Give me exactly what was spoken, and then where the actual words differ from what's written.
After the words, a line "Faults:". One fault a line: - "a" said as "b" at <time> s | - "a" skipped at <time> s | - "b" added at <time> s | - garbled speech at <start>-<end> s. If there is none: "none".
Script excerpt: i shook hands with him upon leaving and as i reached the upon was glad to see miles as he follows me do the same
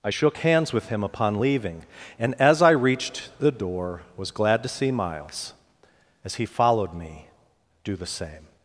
i shook hands with him upon leaving and as i reached the door was glad to see miles as he followed me do the same
Faults:
- "upon" said as "door" at 3.5 s
- "follows" said as "followed" at 6.4 s